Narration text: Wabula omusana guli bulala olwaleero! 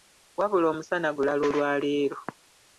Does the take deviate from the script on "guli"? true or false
true